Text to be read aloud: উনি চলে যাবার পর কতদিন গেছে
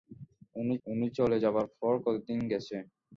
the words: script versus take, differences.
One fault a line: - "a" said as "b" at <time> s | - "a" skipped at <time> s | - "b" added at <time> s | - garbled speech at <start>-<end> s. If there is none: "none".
- "উনি" added at 0.9 s